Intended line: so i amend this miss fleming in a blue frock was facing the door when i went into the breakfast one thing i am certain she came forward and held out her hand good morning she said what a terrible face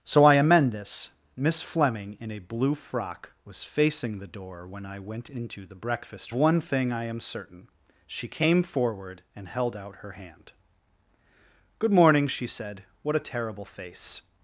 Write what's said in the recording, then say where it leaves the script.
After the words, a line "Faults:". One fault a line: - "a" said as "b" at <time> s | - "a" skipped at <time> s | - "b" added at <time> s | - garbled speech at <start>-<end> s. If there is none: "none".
so i amend this miss fleming in a blue frock was facing the door when i went into the breakfast one thing i am certain she came forward and held out her hand good morning she said what a terrible face
Faults:
none